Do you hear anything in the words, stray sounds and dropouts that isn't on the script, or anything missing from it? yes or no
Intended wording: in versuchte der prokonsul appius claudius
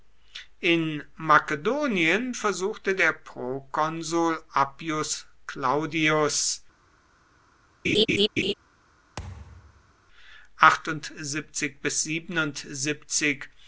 yes